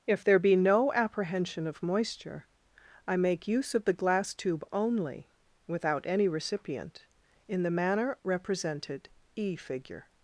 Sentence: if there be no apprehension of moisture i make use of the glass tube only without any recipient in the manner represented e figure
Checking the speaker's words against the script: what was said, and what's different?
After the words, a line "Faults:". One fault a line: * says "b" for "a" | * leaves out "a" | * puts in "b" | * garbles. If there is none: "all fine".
if there be no apprehension of moisture i make use of the glass tube only without any recipient in the manner represented e figure
Faults:
all fine